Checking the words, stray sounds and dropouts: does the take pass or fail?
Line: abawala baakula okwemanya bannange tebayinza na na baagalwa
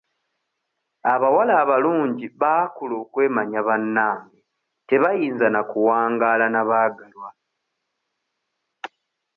fail